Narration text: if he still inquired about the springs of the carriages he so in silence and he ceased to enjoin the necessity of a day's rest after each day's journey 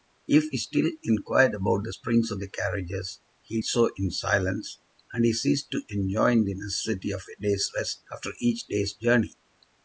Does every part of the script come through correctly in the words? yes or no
yes